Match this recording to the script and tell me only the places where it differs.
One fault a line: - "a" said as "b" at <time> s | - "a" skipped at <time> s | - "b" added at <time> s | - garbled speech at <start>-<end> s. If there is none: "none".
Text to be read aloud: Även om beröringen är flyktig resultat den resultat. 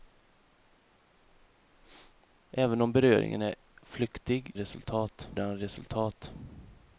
none